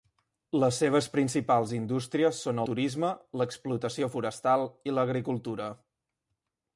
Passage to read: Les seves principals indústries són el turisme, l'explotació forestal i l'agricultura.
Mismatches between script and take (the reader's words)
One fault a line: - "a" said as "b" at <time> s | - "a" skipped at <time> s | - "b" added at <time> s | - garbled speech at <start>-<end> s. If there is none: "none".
- "el" skipped at 2.6 s